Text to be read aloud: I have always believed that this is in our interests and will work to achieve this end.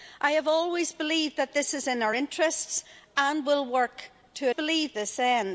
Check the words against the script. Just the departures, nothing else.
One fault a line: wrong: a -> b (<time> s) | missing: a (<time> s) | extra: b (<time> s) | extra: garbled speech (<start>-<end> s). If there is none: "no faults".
wrong: achieve -> believed (4.5 s)